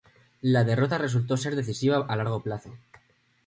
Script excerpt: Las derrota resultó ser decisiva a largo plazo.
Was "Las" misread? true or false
true